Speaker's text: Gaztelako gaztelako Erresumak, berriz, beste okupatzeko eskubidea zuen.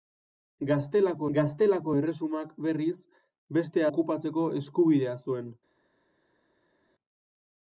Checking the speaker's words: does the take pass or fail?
pass